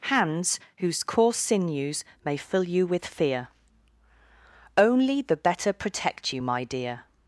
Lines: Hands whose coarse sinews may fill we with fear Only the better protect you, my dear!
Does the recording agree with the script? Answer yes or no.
no